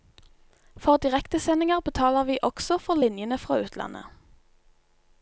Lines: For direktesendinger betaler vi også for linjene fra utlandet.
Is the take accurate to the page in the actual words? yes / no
yes